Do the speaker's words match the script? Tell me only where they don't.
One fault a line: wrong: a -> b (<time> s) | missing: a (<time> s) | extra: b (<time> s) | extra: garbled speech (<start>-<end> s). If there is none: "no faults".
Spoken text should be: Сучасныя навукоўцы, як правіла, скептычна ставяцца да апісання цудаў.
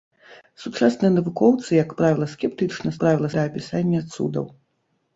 wrong: ставяцца -> правіла (3.0 s)